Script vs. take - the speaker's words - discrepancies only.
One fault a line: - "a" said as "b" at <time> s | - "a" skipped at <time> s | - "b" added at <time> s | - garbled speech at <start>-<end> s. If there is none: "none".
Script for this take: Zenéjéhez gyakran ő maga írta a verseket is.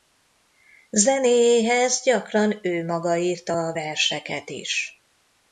none